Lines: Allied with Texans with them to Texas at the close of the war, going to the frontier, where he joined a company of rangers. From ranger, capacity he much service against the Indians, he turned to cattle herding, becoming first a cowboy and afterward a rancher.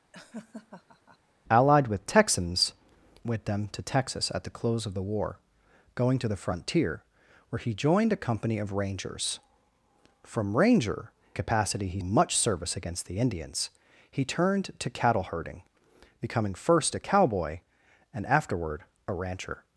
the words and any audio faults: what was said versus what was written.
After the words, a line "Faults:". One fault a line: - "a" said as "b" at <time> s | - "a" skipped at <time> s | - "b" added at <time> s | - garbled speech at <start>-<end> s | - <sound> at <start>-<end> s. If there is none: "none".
Allied with Texans with them to Texas at the close of the war, going to the frontier, where he joined a company of rangers. From ranger, capacity he much service against the Indians, he turned to cattle herding, becoming first a cowboy and afterward a rancher.
Faults:
- laugh at 0.1-1.2 s